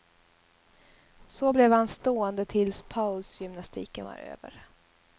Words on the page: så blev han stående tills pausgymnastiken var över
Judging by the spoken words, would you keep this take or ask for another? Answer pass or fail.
pass